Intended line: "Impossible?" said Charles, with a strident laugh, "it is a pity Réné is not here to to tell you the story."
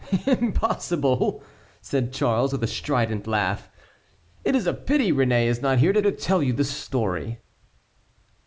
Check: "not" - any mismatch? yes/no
no